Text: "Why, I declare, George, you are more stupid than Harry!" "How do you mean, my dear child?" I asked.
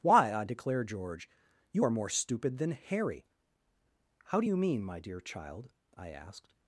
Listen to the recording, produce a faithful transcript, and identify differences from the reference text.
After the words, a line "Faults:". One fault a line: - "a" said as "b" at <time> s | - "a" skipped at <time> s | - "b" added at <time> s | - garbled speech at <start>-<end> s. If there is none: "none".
"Why, I declare, George, you are more stupid than Harry!" "How do you mean, my dear child?" I asked.
Faults:
none